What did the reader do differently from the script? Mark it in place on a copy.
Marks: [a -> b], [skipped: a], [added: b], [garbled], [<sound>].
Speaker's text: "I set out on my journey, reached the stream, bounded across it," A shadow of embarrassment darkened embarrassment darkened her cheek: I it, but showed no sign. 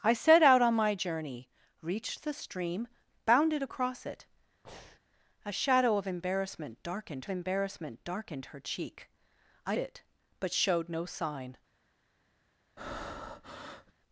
"I set out on my journey, reached the stream, bounded across it," [breath] A shadow of embarrassment darkened embarrassment darkened her cheek: I it, but showed no sign. [breath]